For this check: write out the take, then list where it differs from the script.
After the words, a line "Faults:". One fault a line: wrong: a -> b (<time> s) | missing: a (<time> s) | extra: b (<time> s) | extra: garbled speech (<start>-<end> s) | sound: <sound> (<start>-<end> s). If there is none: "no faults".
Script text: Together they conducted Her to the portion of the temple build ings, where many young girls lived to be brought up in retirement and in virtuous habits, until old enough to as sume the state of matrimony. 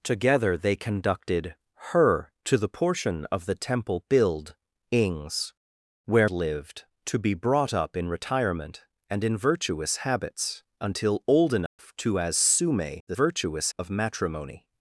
Together they conducted Her to the portion of the temple build ings, where lived to be brought up in retirement and in virtuous habits, until old enough to as sume the virtuous of matrimony.
Faults:
missing: many young girls (6.3 s)
sound: dropout (11.7-11.8 s)
wrong: state -> virtuous (13.1 s)